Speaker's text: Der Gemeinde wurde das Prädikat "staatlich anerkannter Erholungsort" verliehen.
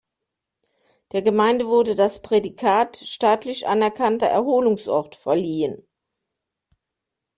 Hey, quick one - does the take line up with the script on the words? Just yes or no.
yes